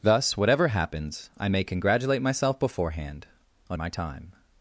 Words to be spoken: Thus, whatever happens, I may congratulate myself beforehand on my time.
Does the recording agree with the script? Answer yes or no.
yes